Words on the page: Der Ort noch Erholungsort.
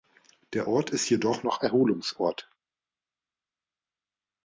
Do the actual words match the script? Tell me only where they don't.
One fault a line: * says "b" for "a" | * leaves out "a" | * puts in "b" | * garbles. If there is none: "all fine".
* puts in "ist jedoch"